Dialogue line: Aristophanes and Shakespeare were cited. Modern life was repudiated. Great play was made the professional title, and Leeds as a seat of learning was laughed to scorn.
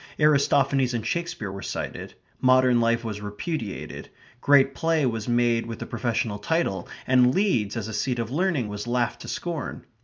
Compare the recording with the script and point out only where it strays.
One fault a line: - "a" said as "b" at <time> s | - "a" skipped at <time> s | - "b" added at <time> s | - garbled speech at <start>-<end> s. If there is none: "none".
- "with" added at 5.7 s